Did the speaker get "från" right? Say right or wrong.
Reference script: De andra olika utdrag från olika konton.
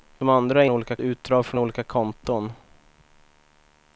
right